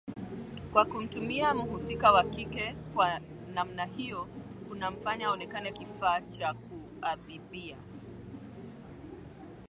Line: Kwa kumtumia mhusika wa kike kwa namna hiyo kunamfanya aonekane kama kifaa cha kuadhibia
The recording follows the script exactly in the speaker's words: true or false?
false